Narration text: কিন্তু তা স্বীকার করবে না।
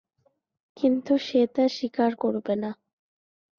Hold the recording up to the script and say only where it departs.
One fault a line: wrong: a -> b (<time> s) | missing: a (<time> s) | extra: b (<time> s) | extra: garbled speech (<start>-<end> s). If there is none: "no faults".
extra: সে (1.3 s)